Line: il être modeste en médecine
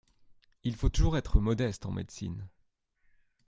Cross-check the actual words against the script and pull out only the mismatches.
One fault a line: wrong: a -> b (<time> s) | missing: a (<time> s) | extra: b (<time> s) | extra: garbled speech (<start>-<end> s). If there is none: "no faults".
extra: faut toujours (0.8 s)